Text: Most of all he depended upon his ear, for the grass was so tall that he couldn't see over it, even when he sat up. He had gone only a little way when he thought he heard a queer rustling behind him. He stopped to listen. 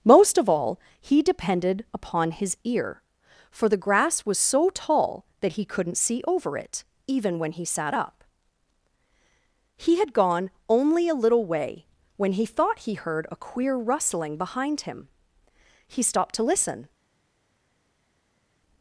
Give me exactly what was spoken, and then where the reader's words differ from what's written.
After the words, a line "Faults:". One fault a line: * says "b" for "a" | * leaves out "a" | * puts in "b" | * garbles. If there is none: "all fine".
Most of all he depended upon his ear, for the grass was so tall that he couldn't see over it, even when he sat up. He had gone only a little way when he thought he heard a queer rustling behind him. He stopped to listen.
Faults:
all fine